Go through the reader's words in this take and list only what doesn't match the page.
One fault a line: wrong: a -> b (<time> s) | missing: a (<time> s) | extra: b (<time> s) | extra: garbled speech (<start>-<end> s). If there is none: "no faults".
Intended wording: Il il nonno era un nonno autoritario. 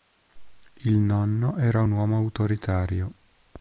missing: il (0.9 s)
wrong: nonno -> uomo (1.9 s)